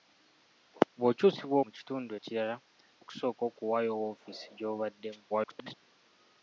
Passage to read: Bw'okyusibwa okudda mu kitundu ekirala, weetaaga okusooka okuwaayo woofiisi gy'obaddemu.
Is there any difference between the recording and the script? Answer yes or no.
yes